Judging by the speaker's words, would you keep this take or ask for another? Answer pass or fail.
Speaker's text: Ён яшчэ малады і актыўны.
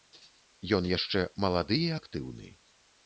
pass